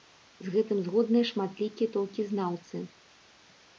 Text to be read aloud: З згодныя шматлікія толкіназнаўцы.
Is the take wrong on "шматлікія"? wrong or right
right